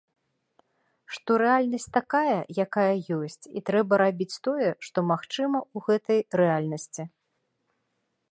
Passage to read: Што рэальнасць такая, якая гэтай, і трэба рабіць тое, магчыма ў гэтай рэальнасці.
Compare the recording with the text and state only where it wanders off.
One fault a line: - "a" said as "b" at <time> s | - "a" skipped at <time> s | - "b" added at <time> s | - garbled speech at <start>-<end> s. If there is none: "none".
- "гэтай" said as "ёсць" at 3.2 s
- "што" added at 4.9 s